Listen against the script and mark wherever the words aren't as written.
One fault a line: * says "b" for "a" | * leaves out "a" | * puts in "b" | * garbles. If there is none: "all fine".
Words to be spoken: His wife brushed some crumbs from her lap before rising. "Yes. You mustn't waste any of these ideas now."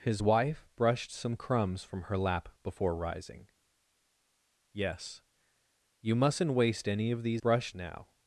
* says "brushed" for "ideas"